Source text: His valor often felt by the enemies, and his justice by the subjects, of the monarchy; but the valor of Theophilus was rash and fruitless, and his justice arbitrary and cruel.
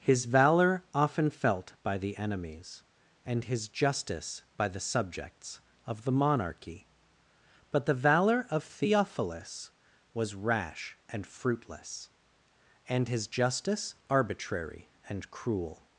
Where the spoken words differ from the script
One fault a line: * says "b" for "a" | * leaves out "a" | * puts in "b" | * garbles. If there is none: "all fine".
all fine